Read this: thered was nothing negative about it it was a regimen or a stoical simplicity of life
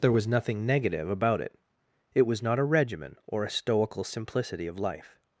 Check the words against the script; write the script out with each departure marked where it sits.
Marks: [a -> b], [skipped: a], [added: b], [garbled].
[thered -> there] was nothing negative about it it was [added: not] a regimen or a stoical simplicity of life